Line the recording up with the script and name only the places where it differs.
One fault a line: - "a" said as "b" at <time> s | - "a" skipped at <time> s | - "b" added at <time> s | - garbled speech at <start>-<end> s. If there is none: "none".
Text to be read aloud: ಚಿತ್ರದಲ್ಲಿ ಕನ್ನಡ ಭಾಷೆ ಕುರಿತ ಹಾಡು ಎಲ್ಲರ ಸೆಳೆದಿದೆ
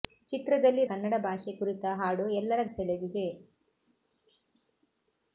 none